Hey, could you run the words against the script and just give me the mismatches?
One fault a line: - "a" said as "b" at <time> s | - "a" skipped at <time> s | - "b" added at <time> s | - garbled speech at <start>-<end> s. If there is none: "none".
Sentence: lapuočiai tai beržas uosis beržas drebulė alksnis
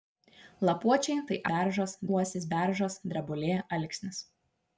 none